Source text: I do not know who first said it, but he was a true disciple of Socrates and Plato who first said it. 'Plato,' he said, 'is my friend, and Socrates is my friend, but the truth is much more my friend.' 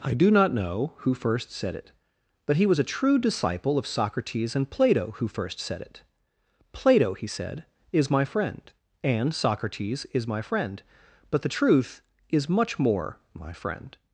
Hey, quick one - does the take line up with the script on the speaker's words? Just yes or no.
yes